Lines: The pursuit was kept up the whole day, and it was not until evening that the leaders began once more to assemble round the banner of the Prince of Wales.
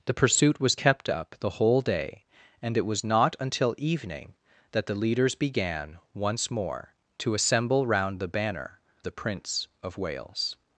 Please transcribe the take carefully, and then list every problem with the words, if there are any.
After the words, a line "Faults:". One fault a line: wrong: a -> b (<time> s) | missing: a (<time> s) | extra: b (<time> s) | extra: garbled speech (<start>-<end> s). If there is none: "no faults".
The pursuit was kept up the whole day, and it was not until evening that the leaders began once more to assemble round the banner the Prince of Wales.
Faults:
missing: of (8.8 s)